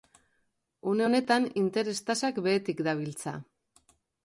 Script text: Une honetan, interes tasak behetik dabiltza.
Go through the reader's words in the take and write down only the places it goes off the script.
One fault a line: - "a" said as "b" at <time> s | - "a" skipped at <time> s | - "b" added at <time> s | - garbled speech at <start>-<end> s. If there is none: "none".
none